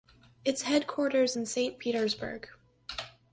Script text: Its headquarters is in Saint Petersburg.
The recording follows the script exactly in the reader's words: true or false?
false